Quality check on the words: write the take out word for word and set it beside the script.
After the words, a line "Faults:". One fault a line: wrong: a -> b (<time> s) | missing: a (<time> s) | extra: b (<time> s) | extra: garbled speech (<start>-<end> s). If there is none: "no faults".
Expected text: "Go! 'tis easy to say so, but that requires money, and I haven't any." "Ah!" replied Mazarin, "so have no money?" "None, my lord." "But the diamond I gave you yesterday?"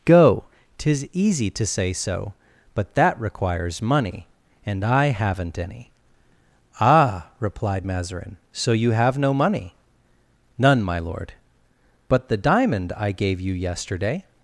"Go! 'tis easy to say so, but that requires money, and I haven't any." "Ah!" replied Mazarin, "so you have no money?" "None, my lord." "But the diamond I gave you yesterday?"
Faults:
extra: you (8.7 s)